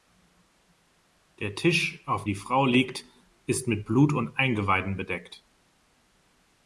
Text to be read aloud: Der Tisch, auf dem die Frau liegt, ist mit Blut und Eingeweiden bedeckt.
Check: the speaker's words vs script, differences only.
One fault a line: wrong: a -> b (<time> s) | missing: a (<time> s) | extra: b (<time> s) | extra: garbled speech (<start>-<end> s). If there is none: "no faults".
missing: dem (2.2 s)